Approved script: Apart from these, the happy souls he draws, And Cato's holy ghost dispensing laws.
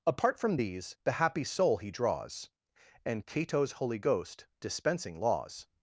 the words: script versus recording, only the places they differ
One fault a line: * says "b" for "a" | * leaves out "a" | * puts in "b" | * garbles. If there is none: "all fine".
* says "soul" for "souls"